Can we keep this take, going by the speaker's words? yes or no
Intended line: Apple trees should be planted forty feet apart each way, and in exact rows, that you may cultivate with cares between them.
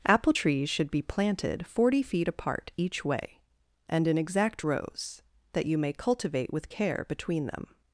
no